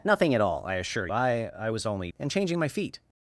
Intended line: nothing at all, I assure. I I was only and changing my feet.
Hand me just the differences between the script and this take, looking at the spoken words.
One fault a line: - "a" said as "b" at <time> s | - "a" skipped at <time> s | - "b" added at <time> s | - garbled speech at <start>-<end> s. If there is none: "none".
none